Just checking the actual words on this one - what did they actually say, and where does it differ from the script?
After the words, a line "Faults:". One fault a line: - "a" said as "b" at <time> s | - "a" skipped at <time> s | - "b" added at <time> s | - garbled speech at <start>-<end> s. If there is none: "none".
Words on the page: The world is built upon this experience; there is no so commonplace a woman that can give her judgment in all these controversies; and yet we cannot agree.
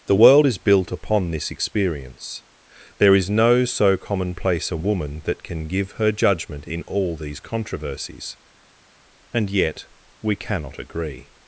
The world is built upon this experience; there is no so commonplace a woman that can give her judgment in all these controversies; and yet we cannot agree.
Faults:
none